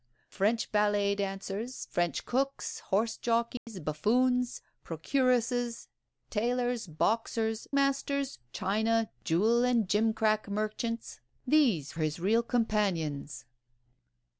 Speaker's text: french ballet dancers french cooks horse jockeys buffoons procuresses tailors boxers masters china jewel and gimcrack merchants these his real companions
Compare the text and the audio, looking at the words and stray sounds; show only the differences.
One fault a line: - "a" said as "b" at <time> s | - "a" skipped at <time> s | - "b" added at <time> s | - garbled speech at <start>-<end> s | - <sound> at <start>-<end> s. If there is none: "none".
- dropout at 3.6-3.7 s